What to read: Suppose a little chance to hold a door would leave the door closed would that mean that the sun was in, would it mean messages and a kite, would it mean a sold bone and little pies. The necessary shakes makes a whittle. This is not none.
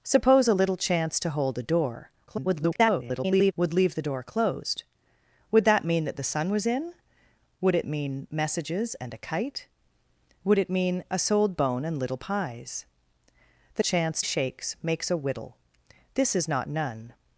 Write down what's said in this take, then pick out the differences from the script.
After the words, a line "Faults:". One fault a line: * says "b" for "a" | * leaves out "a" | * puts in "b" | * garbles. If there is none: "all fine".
Suppose a little chance to hold a door [garbled] would leave the door closed would that mean that the sun was in, would it mean messages and a kite, would it mean a sold bone and little pies. The chance shakes makes a whittle. This is not none.
Faults:
* garbles
* says "chance" for "necessary"